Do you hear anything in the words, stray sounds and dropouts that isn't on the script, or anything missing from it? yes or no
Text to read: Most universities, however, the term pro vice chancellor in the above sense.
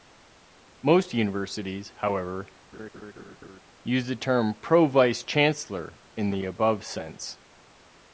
yes